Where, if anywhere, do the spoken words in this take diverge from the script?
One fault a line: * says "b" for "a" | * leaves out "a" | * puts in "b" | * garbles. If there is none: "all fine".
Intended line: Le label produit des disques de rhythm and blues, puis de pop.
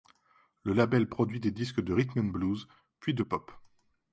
all fine